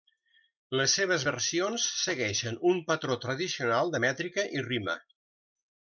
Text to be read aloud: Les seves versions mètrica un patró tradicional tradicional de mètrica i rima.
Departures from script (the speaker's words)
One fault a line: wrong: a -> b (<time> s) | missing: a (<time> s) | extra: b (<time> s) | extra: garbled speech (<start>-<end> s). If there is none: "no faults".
wrong: mètrica -> segueixen (2.0 s)
missing: tradicional (3.9 s)